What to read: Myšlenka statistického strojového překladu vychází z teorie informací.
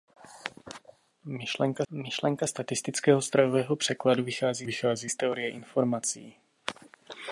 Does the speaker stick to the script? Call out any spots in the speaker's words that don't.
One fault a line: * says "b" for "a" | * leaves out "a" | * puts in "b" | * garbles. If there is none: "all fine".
* puts in "myšlenka"
* puts in "vychází"